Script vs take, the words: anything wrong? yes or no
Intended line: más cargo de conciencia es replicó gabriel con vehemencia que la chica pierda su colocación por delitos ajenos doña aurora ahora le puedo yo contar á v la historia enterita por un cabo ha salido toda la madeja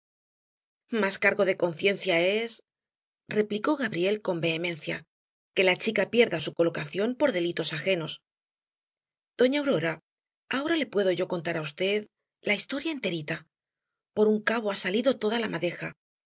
no